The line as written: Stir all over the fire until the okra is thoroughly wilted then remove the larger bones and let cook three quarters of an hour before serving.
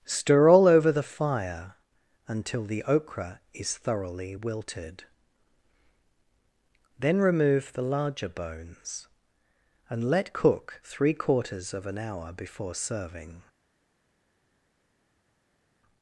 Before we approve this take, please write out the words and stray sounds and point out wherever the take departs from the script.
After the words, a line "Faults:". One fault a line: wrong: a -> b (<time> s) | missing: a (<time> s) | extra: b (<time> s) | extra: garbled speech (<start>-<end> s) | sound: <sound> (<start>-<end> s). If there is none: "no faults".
Stir all over the fire until the okra is thoroughly wilted then remove the larger bones and let cook three quarters of an hour before serving.
Faults:
no faults